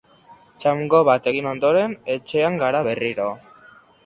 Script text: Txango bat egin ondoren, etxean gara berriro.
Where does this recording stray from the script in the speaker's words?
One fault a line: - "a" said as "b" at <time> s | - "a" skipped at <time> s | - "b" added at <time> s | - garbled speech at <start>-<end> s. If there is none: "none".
none